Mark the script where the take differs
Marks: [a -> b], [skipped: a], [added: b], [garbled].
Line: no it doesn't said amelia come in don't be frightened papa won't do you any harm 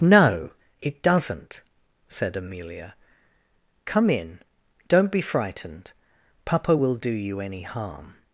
no it doesn't said amelia come in don't be frightened papa [won't -> will] do you any harm